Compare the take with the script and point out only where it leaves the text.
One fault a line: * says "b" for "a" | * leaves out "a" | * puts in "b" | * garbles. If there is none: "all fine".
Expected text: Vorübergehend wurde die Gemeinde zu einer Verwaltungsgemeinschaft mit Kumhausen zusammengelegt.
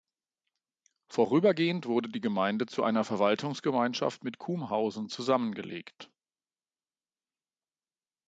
all fine